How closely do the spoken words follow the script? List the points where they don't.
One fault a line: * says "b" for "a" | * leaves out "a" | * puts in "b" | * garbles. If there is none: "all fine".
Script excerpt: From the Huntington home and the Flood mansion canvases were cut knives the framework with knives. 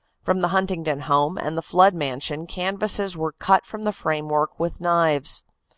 * says "from" for "knives"